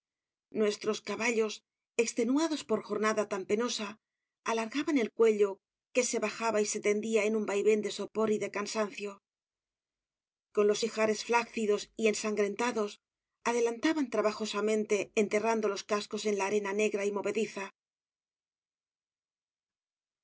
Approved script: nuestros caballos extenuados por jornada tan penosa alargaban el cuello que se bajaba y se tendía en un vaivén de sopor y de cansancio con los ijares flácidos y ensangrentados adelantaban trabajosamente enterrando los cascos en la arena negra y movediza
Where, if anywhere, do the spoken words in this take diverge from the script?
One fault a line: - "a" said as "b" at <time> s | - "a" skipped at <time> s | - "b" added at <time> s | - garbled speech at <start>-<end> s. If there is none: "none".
none